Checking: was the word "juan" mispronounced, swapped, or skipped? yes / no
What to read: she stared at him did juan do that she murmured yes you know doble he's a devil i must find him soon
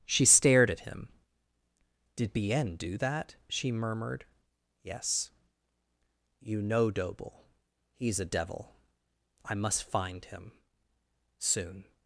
yes